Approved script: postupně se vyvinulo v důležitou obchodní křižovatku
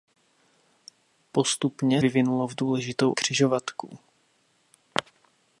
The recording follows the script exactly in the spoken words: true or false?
false